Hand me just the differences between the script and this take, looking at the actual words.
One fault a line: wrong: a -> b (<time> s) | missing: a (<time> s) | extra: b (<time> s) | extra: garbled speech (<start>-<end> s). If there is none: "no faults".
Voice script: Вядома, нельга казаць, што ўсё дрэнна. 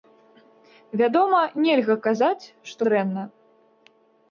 missing: ўсё (2.8 s)